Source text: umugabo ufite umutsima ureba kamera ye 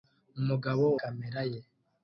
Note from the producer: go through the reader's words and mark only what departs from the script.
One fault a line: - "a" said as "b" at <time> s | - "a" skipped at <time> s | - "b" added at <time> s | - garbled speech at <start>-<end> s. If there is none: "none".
- "ufite umutsima ureba" skipped at 0.8 s